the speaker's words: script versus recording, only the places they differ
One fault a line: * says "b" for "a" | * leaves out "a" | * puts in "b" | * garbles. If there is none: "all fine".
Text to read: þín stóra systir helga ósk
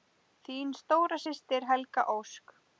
all fine